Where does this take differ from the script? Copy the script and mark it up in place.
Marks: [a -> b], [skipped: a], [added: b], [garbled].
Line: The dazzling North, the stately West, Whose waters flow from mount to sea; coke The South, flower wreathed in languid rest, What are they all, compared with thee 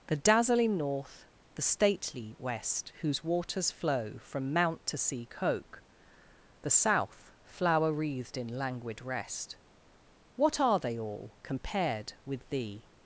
The dazzling North, the stately West, Whose waters flow from mount to sea; coke The South, flower wreathed in languid rest, What are they all, compared with thee